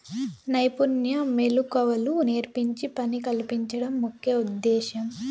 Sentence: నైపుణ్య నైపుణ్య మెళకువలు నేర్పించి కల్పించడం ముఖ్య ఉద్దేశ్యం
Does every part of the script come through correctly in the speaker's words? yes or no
no